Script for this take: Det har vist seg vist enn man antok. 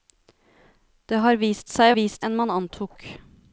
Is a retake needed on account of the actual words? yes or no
no